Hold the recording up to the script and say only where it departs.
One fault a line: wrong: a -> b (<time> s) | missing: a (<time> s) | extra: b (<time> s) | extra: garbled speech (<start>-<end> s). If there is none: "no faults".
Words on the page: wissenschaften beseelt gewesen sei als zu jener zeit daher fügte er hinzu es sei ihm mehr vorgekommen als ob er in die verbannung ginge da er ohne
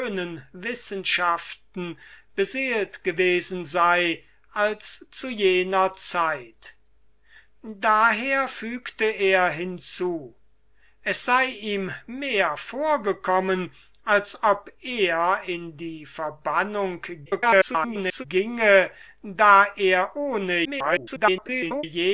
extra: garbled speech (17.3-18.2 s)
extra: garbled speech (20.6-21.8 s)